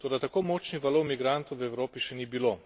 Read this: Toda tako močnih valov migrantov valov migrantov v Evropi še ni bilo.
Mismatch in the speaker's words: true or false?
true